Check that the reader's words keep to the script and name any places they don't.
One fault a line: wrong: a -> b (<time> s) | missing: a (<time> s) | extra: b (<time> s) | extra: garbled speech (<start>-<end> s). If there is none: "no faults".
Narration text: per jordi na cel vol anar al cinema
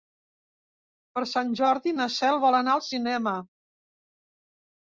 extra: sant (1.3 s)